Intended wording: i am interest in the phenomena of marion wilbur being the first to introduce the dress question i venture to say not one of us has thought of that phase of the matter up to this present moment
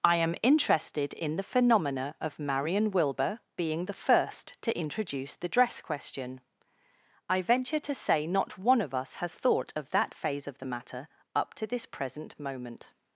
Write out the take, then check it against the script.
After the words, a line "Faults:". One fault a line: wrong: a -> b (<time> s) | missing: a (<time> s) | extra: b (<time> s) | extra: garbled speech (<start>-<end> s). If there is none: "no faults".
i am interested in the phenomena of marion wilbur being the first to introduce the dress question i venture to say not one of us has thought of that phase of the matter up to this present moment
Faults:
wrong: interest -> interested (0.4 s)